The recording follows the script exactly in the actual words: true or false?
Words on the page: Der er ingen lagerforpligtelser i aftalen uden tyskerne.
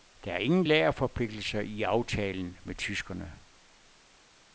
false